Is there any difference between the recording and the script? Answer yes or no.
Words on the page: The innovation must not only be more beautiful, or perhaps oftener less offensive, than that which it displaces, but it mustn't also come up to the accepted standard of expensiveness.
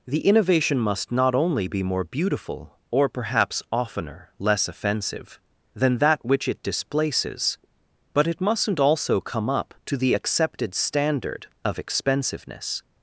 no